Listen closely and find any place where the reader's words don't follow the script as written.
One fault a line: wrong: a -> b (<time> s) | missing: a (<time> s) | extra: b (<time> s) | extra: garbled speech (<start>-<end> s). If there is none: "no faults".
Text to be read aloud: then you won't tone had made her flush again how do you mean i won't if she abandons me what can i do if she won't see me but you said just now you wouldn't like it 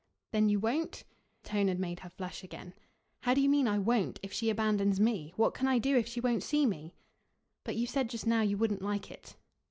no faults